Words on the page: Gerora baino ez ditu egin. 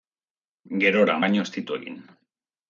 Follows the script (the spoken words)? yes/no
yes